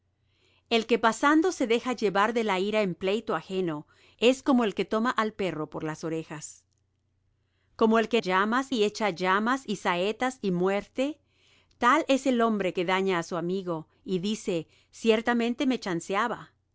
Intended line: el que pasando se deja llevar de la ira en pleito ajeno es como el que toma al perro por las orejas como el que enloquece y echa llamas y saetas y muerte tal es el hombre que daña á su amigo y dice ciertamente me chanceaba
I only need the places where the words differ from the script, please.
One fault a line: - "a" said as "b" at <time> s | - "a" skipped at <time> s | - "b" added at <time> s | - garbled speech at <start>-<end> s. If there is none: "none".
- "enloquece" said as "llamas" at 8.2 s